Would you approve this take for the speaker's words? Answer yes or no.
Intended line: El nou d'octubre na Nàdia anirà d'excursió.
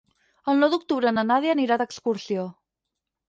yes